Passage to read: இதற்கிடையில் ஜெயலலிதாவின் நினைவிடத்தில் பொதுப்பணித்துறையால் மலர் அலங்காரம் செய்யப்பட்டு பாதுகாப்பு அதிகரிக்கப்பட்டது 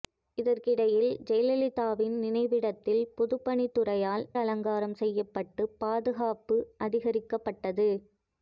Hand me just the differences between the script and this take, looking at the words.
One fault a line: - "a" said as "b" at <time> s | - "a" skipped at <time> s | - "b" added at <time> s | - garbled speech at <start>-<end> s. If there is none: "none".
- "மலர்" skipped at 4.2 s